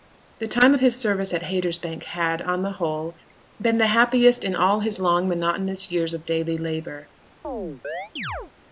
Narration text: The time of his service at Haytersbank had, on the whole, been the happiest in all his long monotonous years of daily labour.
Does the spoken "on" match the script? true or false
true